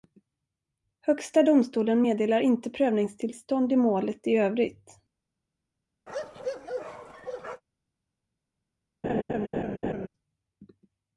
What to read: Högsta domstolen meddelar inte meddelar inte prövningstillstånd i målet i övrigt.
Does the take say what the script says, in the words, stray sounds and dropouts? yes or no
no